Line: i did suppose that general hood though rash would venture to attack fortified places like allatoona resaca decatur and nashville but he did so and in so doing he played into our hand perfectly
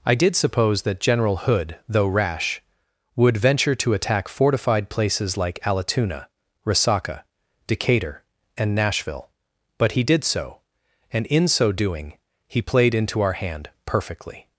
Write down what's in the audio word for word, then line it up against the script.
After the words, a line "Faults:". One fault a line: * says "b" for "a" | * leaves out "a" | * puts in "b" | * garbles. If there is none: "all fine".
i did suppose that general hood though rash would venture to attack fortified places like allatoona resaca decatur and nashville but he did so and in so doing he played into our hand perfectly
Faults:
all fine